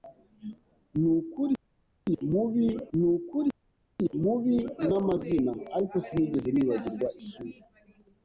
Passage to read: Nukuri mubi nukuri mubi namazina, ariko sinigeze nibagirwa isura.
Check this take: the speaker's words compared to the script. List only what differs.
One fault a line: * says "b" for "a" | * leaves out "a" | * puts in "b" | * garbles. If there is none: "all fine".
all fine